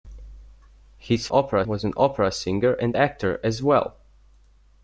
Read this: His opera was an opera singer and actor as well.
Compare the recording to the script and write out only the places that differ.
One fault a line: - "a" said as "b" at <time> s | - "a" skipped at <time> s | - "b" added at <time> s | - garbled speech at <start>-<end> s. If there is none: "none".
none